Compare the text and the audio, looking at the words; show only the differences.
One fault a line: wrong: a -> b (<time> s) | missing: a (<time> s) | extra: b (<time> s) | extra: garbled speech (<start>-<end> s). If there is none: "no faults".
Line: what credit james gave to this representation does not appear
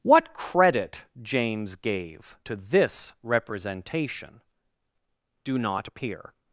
wrong: does -> do (5.4 s)